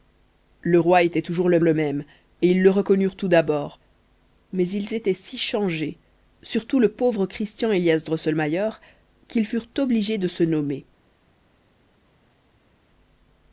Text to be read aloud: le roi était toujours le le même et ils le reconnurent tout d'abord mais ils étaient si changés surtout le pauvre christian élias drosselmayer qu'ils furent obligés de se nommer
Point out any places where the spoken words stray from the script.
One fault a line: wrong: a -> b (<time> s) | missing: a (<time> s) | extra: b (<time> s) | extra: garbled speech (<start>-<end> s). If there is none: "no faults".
no faults